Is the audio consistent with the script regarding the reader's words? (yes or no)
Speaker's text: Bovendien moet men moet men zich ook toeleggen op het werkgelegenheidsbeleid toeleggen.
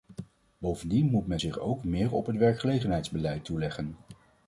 no